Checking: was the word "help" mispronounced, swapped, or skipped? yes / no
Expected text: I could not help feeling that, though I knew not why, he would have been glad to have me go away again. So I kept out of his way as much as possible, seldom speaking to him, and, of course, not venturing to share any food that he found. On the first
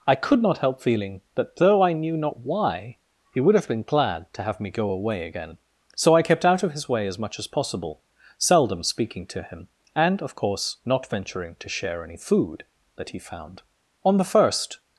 no